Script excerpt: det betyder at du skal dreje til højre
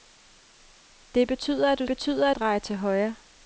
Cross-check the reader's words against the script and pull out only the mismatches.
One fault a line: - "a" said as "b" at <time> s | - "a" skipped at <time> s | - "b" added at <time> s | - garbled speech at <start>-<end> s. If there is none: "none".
- "skal" said as "betyder" at 1.9 s